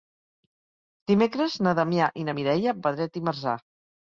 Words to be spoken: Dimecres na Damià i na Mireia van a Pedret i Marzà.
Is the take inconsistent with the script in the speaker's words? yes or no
yes